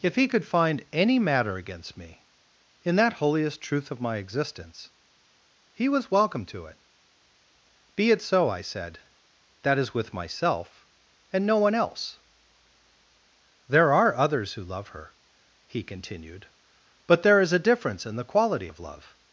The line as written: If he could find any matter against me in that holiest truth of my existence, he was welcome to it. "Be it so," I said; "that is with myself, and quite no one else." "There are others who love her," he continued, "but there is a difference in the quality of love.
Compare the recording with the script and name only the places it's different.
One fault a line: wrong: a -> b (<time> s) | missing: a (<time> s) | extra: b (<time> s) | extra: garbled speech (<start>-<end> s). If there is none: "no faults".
missing: quite (11.4 s)